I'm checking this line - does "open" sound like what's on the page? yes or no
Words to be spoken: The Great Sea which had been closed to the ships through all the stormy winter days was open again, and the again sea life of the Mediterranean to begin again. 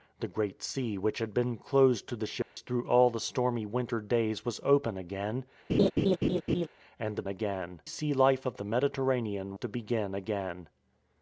yes